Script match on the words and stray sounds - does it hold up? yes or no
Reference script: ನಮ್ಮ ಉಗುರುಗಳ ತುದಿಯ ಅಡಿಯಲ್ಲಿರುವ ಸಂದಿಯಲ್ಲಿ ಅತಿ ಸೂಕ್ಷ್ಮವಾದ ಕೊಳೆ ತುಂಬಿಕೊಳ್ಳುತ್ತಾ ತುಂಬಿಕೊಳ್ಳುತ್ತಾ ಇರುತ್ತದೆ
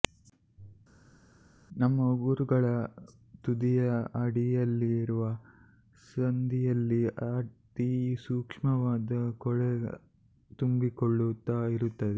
no